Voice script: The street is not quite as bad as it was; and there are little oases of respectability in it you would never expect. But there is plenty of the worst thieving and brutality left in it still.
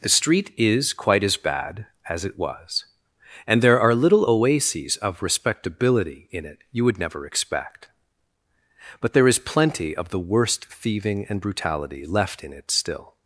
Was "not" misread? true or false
true